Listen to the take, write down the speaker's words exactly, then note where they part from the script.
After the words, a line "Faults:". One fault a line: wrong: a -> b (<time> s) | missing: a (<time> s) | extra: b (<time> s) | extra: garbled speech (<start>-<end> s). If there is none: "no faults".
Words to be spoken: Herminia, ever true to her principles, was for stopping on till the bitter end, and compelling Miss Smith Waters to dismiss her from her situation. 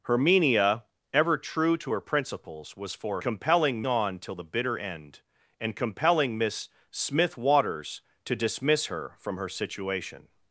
Herminia, ever true to her principles, was for compelling on till the bitter end, and compelling Miss Smith Waters to dismiss her from her situation.
Faults:
wrong: stopping -> compelling (3.2 s)